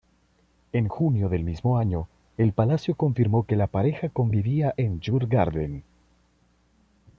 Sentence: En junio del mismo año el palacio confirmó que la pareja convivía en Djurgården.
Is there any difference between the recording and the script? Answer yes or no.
no